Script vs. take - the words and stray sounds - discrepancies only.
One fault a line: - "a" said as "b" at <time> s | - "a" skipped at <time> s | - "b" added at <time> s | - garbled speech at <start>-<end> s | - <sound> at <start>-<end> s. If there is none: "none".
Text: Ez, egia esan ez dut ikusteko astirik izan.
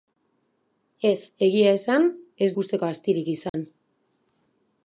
- "dut" skipped at 2.5 s
- dropout at 3.5-3.5 s